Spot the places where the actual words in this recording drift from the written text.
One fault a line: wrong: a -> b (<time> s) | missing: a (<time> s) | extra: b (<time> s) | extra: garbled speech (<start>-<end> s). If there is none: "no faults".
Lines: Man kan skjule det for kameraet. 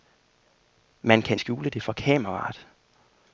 no faults